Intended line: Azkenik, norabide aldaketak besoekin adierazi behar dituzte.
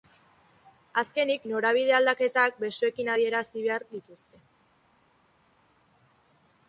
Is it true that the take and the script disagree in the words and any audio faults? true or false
false